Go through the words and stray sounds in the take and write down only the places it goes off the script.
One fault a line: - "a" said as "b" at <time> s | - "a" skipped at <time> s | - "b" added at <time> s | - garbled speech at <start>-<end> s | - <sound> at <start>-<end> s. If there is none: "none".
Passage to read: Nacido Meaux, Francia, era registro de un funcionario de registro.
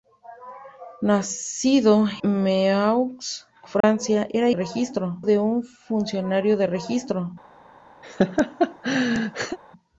- dropout at 3.8-3.8 s
- laugh at 8.0-9.6 s